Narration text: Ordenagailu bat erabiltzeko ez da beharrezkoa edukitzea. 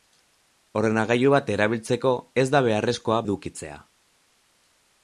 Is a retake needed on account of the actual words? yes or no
no